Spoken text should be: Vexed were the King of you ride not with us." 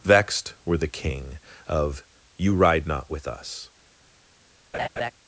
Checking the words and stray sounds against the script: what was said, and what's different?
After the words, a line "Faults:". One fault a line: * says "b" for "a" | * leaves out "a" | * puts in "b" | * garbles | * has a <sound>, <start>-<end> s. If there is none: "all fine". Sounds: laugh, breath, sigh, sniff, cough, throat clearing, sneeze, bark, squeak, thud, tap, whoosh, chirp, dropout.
Vexed were the King of you ride not with us."
Faults:
* has a laugh, 4.7-5.1 s